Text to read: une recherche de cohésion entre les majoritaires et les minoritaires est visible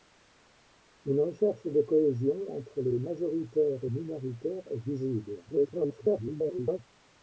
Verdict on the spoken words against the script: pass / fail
fail